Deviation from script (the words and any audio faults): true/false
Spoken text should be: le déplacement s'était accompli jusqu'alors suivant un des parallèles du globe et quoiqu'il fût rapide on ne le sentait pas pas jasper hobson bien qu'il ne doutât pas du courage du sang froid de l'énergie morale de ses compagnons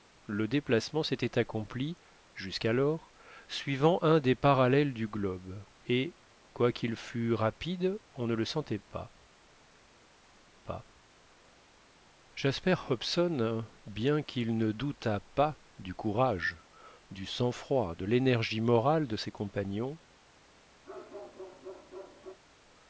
true